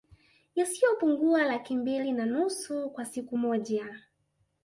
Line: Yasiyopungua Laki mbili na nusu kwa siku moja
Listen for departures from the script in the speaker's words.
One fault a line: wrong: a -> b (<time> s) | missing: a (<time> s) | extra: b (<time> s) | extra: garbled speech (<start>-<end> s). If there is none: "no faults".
no faults